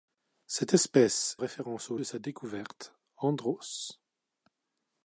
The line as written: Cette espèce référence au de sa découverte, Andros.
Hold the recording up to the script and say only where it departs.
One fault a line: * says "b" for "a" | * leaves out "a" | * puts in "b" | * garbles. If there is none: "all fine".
all fine